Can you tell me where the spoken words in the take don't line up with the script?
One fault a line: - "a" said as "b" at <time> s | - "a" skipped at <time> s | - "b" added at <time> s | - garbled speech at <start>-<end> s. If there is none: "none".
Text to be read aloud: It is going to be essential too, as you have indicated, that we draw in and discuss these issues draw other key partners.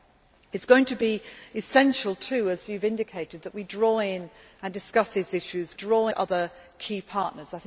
none